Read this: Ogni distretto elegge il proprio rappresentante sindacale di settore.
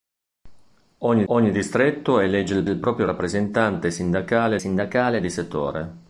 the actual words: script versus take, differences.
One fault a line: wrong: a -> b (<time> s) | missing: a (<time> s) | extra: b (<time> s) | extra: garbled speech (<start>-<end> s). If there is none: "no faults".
extra: ogni (1.3 s)
extra: il (2.7 s)
extra: sindacale (4.6 s)